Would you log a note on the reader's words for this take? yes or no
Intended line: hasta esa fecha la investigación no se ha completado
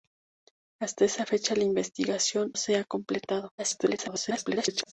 yes